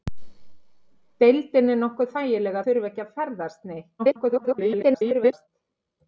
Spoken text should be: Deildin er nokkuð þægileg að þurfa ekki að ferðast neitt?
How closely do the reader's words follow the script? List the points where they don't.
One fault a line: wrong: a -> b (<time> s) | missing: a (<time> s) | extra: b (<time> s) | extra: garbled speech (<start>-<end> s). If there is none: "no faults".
missing: að (2.6 s)
extra: garbled speech (4.0-5.5 s)